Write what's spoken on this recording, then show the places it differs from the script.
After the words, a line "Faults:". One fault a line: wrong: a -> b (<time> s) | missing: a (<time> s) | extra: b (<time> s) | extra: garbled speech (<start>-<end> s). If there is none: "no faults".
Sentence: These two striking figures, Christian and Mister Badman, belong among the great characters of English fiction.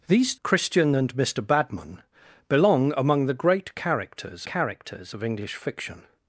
These Christian and Mister Badman, belong among the great characters characters of English fiction.
Faults:
missing: two striking figures (0.3 s)
extra: characters (4.4 s)